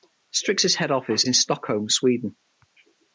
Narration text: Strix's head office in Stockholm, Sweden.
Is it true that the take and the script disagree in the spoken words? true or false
false